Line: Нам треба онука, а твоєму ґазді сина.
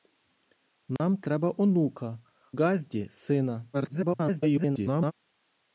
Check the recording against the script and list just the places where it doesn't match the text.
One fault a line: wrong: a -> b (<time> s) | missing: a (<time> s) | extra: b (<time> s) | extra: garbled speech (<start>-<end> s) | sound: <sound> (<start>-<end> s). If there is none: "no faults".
sound: dropout (1.0-1.0 s)
missing: а твоєму (2.2 s)
extra: garbled speech (3.7-5.1 s)